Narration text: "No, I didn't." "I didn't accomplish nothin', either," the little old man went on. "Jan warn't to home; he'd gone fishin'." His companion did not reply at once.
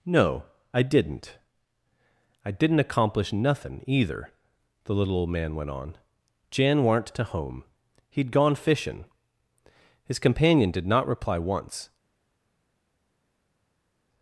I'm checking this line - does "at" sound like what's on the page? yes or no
no